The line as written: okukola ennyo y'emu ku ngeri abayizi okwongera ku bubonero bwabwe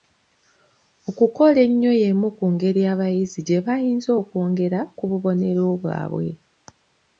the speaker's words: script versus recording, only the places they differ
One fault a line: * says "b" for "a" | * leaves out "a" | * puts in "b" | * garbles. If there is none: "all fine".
* puts in "gye bayinza"